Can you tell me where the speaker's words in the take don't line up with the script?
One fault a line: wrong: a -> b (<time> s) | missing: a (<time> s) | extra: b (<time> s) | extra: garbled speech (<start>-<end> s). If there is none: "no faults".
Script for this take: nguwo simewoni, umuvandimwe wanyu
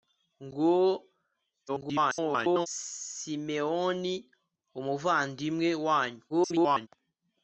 extra: garbled speech (1.7-2.7 s)
extra: garbled speech (6.3-6.9 s)